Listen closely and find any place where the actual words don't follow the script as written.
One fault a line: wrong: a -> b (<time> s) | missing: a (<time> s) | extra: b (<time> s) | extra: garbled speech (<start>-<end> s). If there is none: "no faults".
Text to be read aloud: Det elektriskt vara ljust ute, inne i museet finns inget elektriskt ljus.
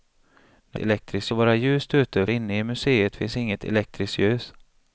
no faults